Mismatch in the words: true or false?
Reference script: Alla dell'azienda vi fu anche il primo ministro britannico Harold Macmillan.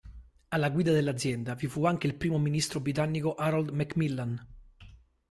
true